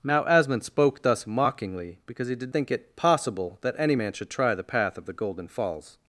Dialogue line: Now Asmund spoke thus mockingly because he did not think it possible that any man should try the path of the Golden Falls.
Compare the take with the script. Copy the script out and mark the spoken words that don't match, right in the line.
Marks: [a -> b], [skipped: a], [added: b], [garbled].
Now Asmund spoke thus mockingly because he did [skipped: not] think it possible that any man should try the path of the Golden Falls.